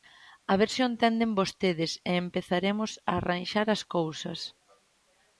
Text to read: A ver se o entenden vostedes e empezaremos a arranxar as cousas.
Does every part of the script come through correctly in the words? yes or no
yes